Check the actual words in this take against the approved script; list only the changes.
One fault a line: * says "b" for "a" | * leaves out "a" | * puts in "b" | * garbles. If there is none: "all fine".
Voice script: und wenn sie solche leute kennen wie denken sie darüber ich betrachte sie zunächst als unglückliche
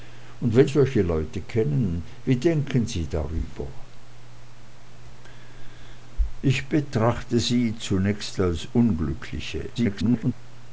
* leaves out "sie"
* garbles